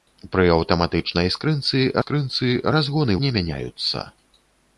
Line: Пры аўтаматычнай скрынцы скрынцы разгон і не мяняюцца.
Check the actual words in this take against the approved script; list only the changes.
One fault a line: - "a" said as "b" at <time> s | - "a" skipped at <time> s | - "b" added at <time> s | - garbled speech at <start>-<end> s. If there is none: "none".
none